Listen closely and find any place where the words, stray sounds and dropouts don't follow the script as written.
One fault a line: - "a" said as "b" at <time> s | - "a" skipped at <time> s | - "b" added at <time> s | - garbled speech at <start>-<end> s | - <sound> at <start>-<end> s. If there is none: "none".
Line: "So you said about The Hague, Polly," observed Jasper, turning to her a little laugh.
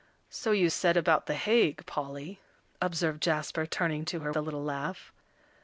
none